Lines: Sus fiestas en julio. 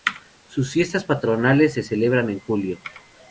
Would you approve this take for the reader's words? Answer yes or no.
no